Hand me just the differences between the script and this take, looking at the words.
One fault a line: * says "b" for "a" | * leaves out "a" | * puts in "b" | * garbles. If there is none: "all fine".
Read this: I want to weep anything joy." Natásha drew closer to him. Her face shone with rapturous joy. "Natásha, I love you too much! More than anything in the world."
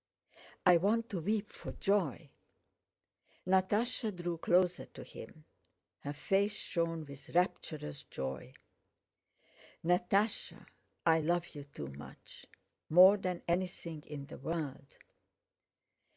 * says "for" for "anything"